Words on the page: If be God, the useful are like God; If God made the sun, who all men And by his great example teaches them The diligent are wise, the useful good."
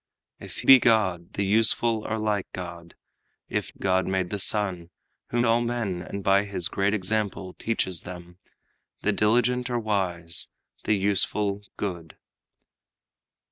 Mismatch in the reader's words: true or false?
false